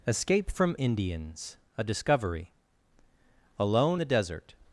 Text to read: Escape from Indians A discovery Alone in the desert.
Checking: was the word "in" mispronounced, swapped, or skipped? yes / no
yes